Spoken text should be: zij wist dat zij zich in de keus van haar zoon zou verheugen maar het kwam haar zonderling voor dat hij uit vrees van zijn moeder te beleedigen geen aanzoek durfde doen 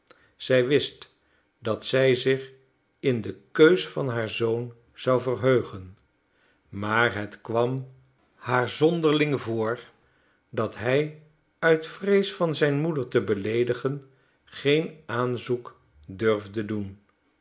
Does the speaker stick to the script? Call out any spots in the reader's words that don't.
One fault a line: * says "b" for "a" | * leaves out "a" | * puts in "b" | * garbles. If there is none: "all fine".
all fine